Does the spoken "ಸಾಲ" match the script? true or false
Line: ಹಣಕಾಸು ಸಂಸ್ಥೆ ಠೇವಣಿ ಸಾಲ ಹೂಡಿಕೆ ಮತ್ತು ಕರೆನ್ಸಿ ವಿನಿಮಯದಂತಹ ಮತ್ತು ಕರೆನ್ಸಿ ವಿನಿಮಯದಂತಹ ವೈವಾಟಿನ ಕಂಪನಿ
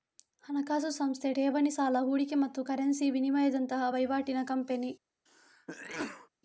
true